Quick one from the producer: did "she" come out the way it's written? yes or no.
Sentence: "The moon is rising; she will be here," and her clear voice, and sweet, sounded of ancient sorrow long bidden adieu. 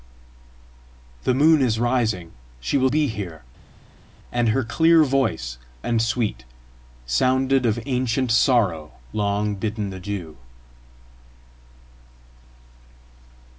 yes